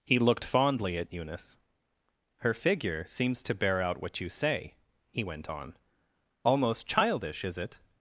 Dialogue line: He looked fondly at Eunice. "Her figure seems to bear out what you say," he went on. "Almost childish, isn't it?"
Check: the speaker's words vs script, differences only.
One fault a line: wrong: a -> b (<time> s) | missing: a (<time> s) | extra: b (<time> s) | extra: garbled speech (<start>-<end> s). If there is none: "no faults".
wrong: isn't -> is (7.4 s)